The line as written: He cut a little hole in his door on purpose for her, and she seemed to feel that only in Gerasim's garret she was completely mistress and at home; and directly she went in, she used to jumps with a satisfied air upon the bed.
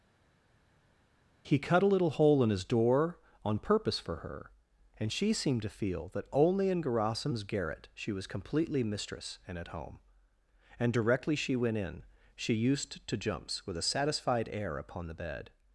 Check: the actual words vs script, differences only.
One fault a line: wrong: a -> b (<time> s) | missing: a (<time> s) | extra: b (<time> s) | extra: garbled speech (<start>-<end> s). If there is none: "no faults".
no faults